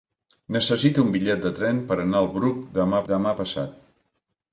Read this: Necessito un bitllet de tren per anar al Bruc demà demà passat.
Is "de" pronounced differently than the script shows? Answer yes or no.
no